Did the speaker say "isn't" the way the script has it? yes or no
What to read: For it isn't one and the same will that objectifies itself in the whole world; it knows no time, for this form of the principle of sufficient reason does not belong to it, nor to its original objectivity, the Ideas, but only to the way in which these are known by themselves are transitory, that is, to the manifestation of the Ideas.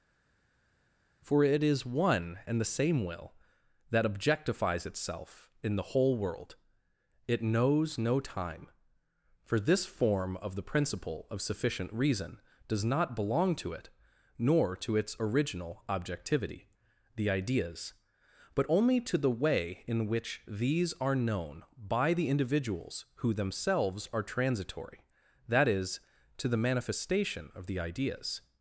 no